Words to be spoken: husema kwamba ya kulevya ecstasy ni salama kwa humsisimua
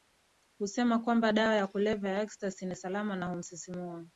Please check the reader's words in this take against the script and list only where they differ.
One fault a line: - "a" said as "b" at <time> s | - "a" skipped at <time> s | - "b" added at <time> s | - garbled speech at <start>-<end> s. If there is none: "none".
- "dawa" added at 1.3 s
- "ya" added at 2.1 s
- "kwa" said as "na" at 3.1 s